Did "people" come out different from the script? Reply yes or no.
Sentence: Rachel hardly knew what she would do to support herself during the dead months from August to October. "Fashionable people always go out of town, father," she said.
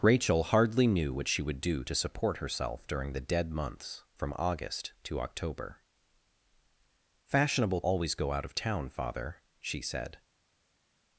yes